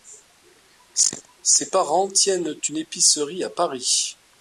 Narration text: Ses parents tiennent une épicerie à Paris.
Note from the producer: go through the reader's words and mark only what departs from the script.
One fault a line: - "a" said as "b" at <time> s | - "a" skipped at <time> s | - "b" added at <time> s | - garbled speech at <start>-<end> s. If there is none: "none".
none